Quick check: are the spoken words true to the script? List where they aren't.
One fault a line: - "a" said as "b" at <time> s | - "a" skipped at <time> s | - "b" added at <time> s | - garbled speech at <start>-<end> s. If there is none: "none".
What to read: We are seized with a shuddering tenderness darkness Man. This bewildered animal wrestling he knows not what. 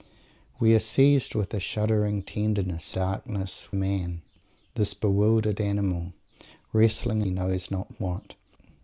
none